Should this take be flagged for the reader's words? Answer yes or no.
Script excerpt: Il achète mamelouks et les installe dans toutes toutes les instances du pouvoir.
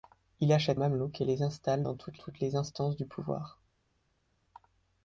no